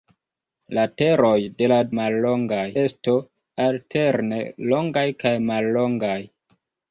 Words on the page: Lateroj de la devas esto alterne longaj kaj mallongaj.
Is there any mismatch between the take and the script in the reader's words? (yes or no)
yes